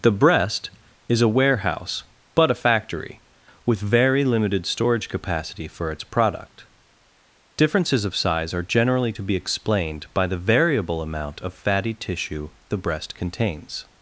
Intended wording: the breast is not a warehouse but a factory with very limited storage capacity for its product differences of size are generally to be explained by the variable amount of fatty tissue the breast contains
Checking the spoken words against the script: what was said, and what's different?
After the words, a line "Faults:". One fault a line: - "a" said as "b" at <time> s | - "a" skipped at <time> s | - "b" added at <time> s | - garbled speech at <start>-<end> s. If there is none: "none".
the breast is a warehouse but a factory with very limited storage capacity for its product differences of size are generally to be explained by the variable amount of fatty tissue the breast contains
Faults:
- "not" skipped at 1.2 s